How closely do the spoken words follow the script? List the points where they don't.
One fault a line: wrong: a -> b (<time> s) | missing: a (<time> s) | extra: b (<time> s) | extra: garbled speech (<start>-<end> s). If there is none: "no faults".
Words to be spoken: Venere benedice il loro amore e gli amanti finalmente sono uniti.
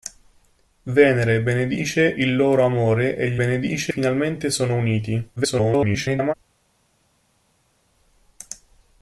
wrong: amanti -> benedice (3.4 s)
extra: garbled speech (5.4-6.3 s)